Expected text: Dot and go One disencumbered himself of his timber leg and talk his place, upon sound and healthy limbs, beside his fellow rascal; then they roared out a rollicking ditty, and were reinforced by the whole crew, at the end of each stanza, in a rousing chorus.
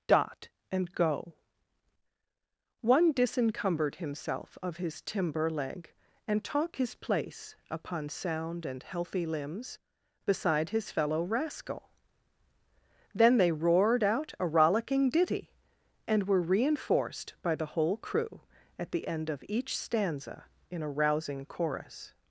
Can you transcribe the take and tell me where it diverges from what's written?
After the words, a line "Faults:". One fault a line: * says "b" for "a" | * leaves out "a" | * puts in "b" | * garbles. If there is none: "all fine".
Dot and go One disencumbered himself of his timber leg and talk his place, upon sound and healthy limbs, beside his fellow rascal; then they roared out a rollicking ditty, and were reinforced by the whole crew, at the end of each stanza, in a rousing chorus.
Faults:
all fine